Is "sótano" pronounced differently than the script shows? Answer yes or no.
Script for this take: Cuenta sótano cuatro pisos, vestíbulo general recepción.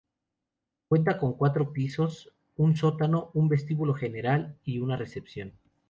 yes